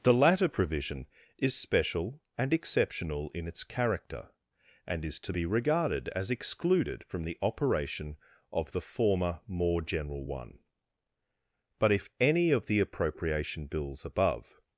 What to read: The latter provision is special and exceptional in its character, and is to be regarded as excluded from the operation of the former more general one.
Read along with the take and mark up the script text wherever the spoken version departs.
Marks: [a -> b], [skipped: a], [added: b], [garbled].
The latter provision is special and exceptional in its character, and is to be regarded as excluded from the operation of the former more general one. [added: But if any of the appropriation bills above]